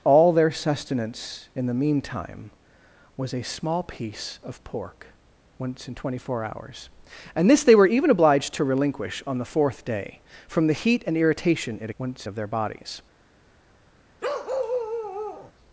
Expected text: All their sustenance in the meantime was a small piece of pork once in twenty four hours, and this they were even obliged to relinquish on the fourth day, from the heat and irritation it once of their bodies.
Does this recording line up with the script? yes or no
yes